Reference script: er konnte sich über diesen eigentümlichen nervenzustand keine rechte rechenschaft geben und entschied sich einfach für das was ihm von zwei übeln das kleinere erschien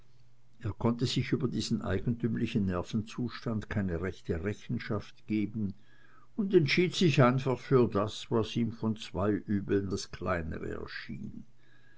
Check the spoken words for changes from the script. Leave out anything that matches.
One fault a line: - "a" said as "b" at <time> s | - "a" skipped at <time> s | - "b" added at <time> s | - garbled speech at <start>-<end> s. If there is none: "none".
none